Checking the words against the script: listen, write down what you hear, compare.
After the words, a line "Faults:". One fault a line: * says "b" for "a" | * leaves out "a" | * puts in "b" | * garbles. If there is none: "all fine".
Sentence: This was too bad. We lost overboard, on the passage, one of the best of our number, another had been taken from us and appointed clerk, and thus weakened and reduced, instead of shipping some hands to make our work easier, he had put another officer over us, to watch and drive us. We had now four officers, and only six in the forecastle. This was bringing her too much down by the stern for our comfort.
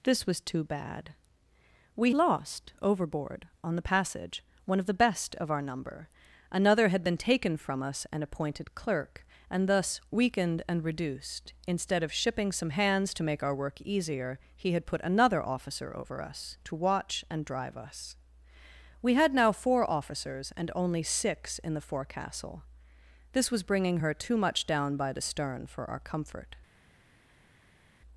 This was too bad. We lost overboard, on the passage, one of the best of our number, another had been taken from us and appointed clerk, and thus weakened and reduced, instead of shipping some hands to make our work easier, he had put another officer over us, to watch and drive us. We had now four officers, and only six in the forecastle. This was bringing her too much down by the stern for our comfort.
Faults:
all fine